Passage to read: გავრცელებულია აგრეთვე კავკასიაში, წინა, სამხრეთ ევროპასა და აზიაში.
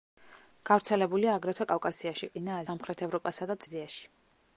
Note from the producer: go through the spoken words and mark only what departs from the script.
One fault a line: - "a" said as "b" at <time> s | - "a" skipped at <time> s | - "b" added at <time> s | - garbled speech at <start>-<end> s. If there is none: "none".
none